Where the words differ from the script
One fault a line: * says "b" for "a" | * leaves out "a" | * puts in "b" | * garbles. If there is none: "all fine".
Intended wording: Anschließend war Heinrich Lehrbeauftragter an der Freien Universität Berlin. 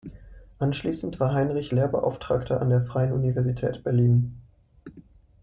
all fine